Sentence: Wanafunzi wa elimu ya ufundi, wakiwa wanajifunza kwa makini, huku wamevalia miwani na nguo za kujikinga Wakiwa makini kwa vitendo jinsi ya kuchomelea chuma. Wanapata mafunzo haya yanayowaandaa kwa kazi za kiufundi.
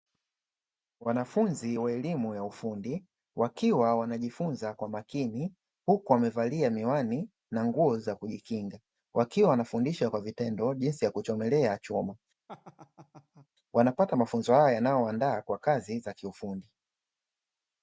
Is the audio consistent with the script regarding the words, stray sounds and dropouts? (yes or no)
no